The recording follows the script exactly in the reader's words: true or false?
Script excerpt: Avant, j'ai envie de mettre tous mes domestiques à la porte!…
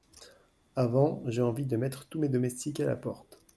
true